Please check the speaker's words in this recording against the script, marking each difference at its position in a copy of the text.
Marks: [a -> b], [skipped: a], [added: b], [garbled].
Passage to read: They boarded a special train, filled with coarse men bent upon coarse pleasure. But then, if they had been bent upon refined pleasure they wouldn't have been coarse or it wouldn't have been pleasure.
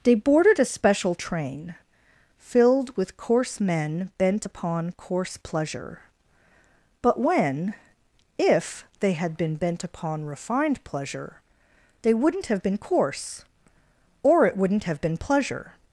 They boarded a special train, filled with coarse men bent upon coarse pleasure. But [then, -> when] if they had been bent upon refined pleasure they wouldn't have been coarse or it wouldn't have been pleasure.